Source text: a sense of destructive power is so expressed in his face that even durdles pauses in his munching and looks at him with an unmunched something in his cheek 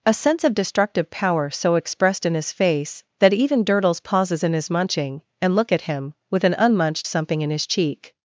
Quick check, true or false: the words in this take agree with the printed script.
false